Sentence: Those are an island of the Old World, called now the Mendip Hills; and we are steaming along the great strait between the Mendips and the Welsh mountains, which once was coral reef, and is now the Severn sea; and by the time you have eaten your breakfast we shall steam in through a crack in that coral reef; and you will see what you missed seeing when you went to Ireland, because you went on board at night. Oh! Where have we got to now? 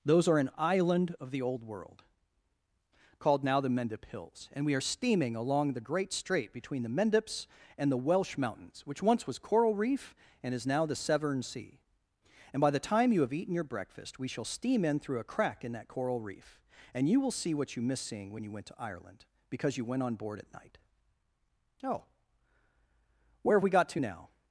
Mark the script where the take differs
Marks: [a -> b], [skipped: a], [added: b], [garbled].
Those are an island of the Old World, called now the Mendip Hills; and we are steaming along the great strait between the Mendips and the Welsh mountains, which once was coral reef, and is now the Severn sea; and by the time you have eaten your breakfast we shall steam in through a crack in that coral reef; and you will see what you missed seeing when you went to Ireland, because you went on board at night. Oh! Where have we got to now?